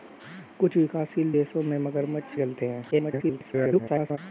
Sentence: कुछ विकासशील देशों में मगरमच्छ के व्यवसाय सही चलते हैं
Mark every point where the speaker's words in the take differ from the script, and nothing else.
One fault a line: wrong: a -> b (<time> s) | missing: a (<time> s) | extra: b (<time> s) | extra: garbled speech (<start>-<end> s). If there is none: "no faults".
missing: के व्यवसाय सही (2.3 s)
extra: garbled speech (2.9-4.2 s)